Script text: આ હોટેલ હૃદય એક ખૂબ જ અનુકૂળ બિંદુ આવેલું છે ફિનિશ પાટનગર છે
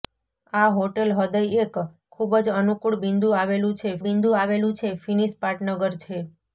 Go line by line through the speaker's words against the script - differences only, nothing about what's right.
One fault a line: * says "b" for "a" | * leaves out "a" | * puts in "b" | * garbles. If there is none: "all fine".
* puts in "બિંદુ આવેલું છે"